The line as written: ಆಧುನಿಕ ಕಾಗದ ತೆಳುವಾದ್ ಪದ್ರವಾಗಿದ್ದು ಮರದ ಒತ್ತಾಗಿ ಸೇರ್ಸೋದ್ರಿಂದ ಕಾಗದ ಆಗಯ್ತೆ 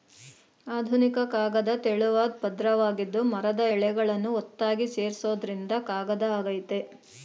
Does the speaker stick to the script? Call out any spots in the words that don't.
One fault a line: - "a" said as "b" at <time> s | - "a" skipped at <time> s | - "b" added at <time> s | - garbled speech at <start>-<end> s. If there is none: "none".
- "ಎಳೆಗಳನ್ನು" added at 3.7 s